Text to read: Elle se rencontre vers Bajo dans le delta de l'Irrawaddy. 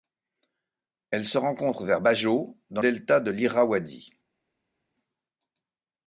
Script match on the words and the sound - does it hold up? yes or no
no